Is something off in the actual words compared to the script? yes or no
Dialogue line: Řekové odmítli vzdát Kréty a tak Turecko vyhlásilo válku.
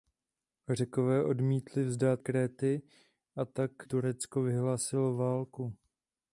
no